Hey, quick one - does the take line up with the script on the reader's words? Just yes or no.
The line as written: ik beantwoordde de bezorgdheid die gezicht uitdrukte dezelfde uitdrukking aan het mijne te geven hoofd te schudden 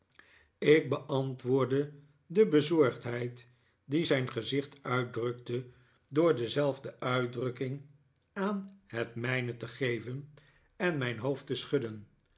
no